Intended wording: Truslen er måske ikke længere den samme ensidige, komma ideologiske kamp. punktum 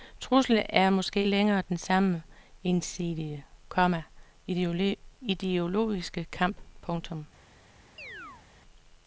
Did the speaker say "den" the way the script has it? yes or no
yes